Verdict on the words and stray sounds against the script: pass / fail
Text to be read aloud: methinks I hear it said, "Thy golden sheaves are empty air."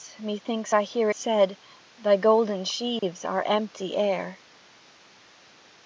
fail